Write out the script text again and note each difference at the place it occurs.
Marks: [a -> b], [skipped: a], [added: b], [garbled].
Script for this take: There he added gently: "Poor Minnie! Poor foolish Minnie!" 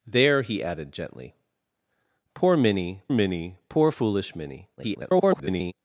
There he added gently: "Poor Minnie! [added: Minnie] Poor foolish Minnie!" [garbled]